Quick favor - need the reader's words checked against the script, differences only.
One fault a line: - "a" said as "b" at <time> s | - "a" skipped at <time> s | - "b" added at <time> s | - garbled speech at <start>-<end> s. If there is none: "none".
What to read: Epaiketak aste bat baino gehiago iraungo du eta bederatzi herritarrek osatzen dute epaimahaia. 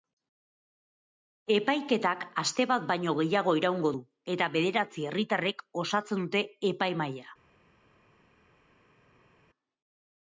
none